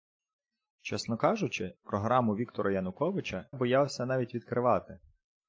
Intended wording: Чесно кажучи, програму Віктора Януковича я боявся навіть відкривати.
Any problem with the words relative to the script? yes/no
yes